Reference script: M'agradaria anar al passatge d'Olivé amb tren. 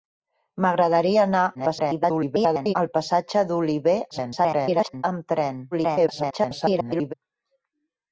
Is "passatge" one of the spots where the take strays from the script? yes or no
no